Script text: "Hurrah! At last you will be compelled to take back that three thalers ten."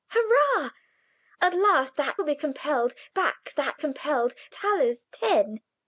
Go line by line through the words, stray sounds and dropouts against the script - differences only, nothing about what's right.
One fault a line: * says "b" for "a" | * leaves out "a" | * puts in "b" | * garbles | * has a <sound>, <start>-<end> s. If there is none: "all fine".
* says "that" for "you"
* leaves out "to take"
* says "compelled" for "three"